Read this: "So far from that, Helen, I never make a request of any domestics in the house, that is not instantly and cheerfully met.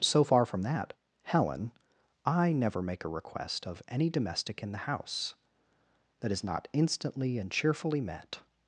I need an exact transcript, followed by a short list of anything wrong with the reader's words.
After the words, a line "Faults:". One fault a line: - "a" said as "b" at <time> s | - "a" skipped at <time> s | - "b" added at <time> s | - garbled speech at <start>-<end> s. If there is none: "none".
"So far from that, Helen, I never make a request of any domestic in the house, that is not instantly and cheerfully met.
Faults:
- "domestics" said as "domestic" at 4.1 s